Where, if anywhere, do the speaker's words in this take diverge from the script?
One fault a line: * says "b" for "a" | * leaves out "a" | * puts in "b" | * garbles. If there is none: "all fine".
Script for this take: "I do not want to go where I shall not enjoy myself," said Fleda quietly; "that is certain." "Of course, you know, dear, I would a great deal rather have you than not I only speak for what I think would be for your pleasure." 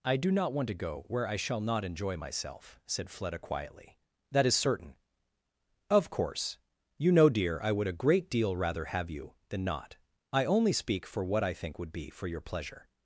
all fine